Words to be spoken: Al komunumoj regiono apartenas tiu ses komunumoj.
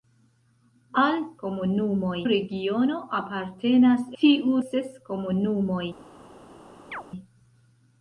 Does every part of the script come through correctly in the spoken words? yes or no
yes